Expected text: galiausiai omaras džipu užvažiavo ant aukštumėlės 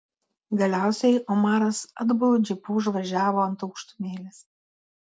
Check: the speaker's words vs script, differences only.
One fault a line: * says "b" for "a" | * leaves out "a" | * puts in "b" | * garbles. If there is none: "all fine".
* puts in "atbulu"